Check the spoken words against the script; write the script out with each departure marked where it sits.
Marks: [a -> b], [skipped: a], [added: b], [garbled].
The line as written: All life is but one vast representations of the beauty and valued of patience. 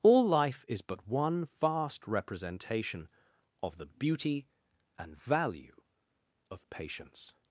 All life is but one vast [representations -> representation] of the beauty and [valued -> value] of patience.